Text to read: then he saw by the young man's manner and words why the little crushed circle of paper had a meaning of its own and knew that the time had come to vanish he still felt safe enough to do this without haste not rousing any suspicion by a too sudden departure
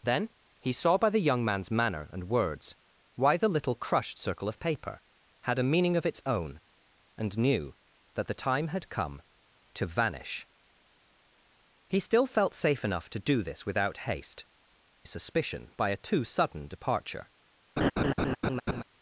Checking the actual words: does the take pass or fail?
fail